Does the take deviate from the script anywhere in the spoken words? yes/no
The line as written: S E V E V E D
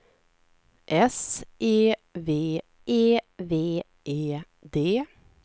no